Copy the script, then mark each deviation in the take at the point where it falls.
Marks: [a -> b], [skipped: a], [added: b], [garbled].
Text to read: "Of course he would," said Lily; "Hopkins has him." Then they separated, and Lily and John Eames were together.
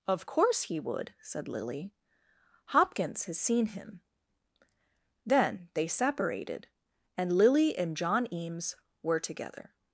"Of course he would," said Lily; "Hopkins has [added: seen] him." Then they separated, and Lily and John Eames were together.